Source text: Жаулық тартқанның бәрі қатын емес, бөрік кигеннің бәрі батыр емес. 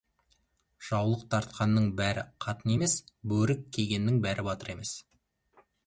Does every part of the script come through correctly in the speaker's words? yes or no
yes